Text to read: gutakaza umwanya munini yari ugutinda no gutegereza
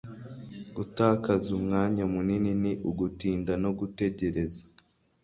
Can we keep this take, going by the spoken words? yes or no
no